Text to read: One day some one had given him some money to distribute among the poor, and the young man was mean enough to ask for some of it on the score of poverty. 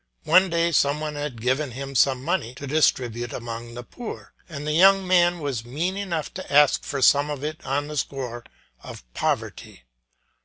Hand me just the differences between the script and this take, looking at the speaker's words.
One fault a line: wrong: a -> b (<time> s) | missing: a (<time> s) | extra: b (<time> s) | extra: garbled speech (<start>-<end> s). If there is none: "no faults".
no faults